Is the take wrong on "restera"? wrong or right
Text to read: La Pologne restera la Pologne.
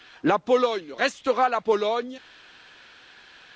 right